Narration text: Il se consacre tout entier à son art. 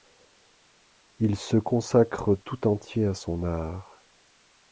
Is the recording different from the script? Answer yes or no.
no